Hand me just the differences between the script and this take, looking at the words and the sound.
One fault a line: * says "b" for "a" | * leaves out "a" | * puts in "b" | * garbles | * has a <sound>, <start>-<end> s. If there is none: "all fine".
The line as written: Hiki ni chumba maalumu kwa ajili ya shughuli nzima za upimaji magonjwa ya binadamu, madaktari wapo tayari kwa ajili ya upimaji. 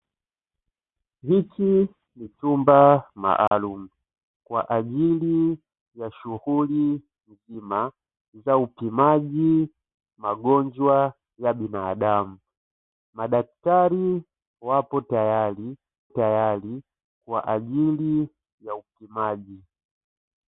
* has a dropout, 3.5-3.5 s
* puts in "tayari"